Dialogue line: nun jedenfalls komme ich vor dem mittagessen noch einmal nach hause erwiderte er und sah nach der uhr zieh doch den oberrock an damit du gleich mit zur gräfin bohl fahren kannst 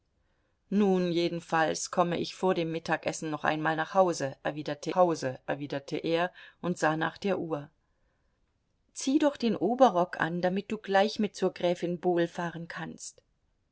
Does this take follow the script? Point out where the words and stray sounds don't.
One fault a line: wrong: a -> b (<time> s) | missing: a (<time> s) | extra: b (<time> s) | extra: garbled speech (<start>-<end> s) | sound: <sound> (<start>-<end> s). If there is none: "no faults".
extra: hause erwiderte (4.9 s)